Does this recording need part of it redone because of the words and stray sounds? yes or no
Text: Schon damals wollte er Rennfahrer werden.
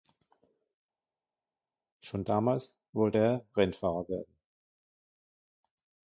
no